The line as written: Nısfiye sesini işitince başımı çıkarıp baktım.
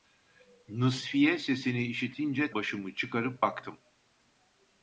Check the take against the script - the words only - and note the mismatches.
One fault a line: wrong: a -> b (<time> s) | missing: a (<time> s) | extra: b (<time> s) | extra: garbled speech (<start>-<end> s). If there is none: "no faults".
no faults